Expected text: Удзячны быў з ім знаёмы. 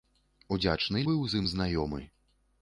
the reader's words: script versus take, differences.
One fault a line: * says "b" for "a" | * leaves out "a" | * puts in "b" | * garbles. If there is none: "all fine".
all fine